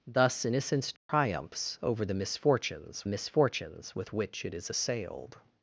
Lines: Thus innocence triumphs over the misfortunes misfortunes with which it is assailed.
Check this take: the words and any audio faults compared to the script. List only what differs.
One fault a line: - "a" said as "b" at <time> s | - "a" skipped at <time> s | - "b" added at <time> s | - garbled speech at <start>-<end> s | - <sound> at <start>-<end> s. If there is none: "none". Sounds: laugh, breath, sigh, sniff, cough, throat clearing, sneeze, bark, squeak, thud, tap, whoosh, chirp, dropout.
- dropout at 1.0-1.1 s